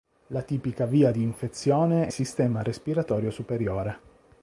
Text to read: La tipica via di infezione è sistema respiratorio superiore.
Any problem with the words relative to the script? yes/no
no